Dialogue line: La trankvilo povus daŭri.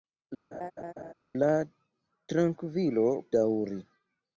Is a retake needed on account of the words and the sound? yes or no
yes